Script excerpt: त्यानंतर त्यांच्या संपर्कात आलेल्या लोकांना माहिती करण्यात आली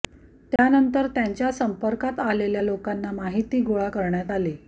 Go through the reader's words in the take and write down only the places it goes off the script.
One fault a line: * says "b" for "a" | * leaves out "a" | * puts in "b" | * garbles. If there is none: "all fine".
* puts in "गोळा"